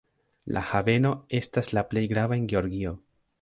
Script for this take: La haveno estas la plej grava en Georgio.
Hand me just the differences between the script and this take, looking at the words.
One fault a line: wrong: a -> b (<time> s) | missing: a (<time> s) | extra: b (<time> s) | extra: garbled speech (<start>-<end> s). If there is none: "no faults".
no faults